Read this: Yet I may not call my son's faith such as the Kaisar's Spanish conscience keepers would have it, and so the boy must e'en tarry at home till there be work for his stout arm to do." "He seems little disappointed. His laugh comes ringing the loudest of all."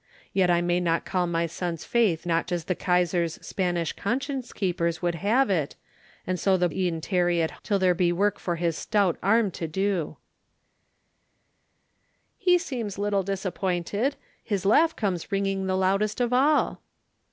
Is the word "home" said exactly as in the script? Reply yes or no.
no